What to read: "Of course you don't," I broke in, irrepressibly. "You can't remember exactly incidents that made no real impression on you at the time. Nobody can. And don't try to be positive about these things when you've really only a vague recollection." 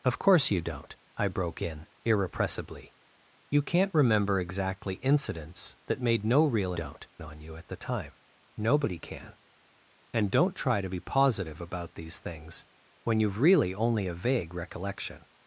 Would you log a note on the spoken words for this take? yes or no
yes